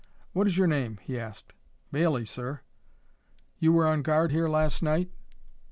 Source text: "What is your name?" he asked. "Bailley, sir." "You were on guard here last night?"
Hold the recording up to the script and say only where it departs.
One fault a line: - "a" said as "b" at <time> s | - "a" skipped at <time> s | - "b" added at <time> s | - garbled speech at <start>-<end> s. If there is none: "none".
none